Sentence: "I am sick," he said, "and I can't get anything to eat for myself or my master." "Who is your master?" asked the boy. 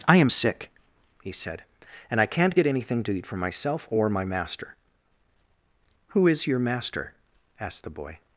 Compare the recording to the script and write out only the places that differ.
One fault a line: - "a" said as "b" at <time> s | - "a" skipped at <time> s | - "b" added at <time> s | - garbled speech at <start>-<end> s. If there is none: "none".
none